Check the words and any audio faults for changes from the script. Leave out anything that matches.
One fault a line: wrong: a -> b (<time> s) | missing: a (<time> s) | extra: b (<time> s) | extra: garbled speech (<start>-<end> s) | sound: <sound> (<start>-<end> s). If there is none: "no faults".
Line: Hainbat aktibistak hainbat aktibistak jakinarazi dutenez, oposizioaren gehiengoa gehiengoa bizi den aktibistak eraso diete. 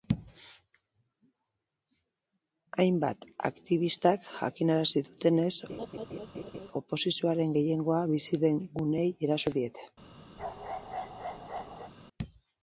missing: hainbat aktibistak (4.2 s)
sound: laugh (5.7-6.7 s)
missing: gehiengoa (8.0 s)
wrong: aktibistak -> guneei (8.8 s)
sound: bark (10.4-11.9 s)